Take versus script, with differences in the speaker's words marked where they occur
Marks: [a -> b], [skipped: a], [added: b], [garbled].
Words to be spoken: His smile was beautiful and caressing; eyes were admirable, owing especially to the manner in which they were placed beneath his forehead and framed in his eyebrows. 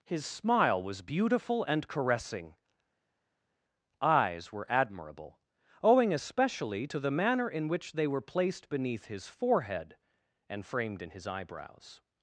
His smile was beautiful and caressing; eyes were admirable, owing especially to the manner in which they were placed beneath his forehead and framed in his eyebrows.